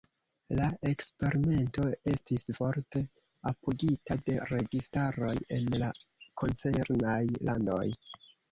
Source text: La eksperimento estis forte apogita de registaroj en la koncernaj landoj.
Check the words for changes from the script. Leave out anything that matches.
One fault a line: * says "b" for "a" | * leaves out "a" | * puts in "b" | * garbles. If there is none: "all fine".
all fine